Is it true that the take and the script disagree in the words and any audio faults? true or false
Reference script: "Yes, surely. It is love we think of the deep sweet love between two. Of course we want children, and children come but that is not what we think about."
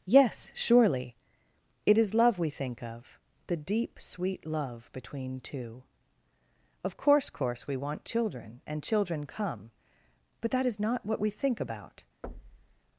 true